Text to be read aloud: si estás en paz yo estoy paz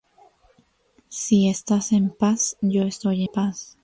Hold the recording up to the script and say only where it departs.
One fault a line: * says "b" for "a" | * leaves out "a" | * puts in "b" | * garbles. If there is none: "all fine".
all fine